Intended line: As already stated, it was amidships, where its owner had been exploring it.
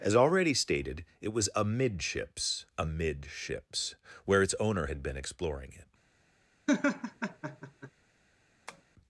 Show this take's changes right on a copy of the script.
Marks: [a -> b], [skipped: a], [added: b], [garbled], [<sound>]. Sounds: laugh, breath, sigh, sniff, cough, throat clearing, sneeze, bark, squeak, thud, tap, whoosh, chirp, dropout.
As already stated, it was amidships, [added: amidships] where its owner had been exploring it. [laugh] [tap]